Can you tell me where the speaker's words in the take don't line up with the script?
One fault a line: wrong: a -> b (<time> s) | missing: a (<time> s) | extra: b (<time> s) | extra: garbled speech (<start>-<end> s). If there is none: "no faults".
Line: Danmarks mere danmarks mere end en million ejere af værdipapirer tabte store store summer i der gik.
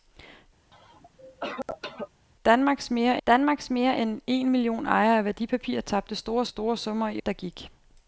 no faults